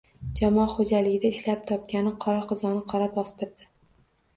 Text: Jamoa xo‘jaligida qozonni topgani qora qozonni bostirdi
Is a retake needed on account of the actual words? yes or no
yes